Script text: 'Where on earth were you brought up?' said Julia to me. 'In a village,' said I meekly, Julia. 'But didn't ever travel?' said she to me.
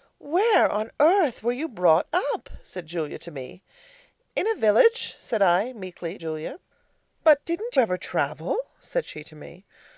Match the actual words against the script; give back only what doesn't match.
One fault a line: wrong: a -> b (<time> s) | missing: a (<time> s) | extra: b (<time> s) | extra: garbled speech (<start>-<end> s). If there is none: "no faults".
no faults